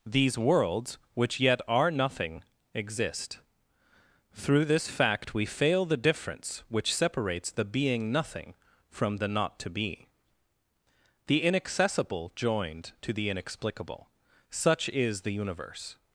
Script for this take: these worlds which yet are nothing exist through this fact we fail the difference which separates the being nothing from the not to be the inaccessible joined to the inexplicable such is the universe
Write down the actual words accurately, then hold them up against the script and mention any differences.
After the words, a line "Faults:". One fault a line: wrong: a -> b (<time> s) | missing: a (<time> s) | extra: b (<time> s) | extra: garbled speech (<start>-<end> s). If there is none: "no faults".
these worlds which yet are nothing exist through this fact we fail the difference which separates the being nothing from the not to be the inaccessible joined to the inexplicable such is the universe
Faults:
no faults